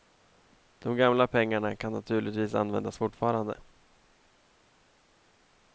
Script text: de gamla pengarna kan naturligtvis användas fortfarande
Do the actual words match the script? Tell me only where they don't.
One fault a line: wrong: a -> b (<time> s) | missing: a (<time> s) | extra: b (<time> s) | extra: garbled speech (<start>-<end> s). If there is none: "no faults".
no faults